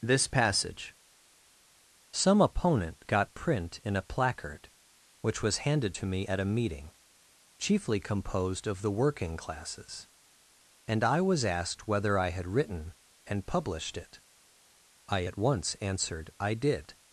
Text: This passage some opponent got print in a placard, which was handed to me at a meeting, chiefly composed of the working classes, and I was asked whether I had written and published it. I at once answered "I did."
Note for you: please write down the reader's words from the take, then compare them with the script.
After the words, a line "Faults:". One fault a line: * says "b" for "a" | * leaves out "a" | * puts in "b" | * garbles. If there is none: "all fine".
This passage some opponent got print in a placard, which was handed to me at a meeting, chiefly composed of the working classes, and I was asked whether I had written and published it. I at once answered "I did."
Faults:
all fine